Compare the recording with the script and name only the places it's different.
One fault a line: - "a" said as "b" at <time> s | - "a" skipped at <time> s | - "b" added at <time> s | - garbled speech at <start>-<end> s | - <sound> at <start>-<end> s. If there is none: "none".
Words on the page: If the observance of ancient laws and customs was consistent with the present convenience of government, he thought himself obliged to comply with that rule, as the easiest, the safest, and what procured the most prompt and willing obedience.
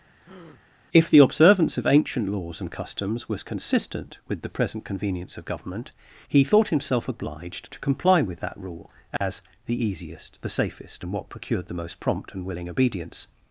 - breath at 0.2-0.6 s
- dropout at 9.2-9.2 s